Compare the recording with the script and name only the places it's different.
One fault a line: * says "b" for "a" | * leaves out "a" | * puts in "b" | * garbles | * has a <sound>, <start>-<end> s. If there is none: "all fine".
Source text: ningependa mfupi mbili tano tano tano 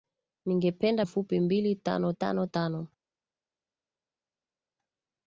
all fine